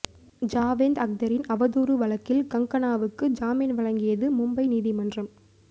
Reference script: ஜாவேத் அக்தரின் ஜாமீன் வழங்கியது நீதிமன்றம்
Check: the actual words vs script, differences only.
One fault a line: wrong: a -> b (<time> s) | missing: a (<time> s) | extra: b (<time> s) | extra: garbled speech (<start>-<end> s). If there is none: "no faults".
extra: அவதூறு வழக்கில் கங்கனாவுக்கு (1.5 s)
extra: மும்பை (4.4 s)